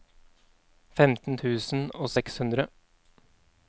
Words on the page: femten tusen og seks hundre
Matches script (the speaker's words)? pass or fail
pass